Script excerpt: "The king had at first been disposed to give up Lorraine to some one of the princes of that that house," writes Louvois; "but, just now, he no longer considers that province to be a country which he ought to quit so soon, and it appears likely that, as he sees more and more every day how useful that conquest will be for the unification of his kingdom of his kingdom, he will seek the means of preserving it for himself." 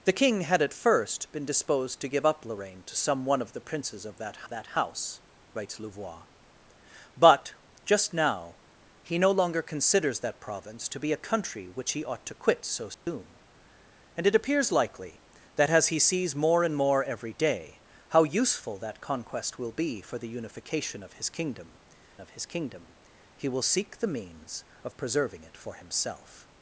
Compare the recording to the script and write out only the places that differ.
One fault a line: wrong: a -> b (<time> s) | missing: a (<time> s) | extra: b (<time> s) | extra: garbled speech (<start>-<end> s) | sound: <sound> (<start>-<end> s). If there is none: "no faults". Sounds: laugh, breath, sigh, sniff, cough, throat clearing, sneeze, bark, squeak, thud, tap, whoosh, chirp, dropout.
sound: dropout (12.9-13.1 s)